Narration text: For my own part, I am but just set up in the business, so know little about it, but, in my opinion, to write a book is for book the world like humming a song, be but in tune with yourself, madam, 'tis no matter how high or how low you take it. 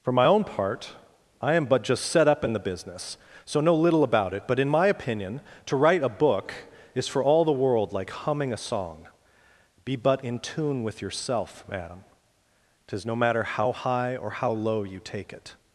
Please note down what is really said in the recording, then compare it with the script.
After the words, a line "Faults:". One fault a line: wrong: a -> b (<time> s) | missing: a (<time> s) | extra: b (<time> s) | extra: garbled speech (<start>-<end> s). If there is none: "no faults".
For my own part, I am but just set up in the business, so know little about it, but, in my opinion, to write a book is for all the world like humming a song, be but in tune with yourself, madam, 'tis no matter how high or how low you take it.
Faults:
wrong: book -> all (7.2 s)